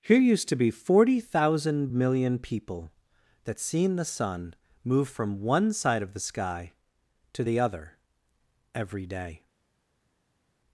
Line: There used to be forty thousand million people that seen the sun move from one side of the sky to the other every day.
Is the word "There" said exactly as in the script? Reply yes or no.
no